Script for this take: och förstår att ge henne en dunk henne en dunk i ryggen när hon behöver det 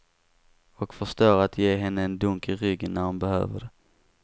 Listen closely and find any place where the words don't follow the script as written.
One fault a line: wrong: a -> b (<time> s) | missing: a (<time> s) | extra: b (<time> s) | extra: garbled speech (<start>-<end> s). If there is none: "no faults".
missing: henne en dunk (2.5 s)